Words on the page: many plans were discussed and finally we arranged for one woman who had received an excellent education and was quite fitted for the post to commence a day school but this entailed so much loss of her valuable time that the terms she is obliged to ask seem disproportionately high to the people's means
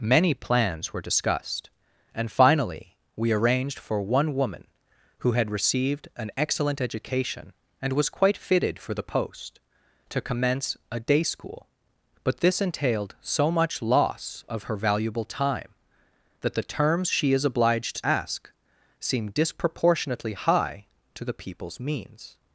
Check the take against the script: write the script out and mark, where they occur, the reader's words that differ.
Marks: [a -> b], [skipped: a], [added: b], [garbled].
many plans were discussed and finally we arranged for one woman who had received an excellent education and was quite fitted for the post to commence a day school but this entailed so much loss of her valuable time that the terms she is obliged [skipped: to] ask seem disproportionately high to the people's means